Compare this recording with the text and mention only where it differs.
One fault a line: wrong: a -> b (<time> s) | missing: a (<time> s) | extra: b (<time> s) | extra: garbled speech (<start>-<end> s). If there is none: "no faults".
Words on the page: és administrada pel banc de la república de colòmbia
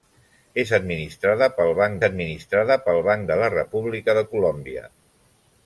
extra: administrada pel banc (2.1 s)